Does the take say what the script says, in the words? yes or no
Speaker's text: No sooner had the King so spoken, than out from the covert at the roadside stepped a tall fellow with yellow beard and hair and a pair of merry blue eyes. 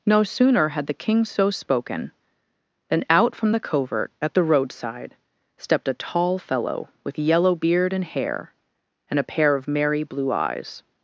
yes